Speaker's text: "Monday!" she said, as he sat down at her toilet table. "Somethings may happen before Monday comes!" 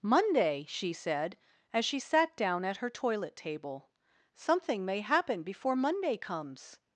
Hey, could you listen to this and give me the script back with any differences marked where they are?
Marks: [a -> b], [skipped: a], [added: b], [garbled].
"Monday!" she said, as [he -> she] sat down at her toilet table. ["Somethings -> Something] may happen before Monday comes!"